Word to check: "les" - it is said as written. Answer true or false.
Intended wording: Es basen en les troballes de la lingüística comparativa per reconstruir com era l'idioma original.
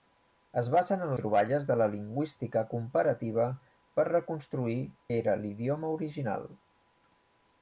false